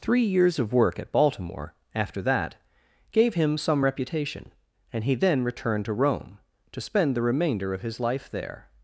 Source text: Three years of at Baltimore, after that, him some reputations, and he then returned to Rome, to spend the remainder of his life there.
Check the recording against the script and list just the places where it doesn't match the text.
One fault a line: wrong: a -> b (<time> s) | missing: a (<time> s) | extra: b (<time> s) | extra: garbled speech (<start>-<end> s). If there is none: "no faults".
extra: work (0.7 s)
extra: gave (3.1 s)
wrong: reputations -> reputation (3.8 s)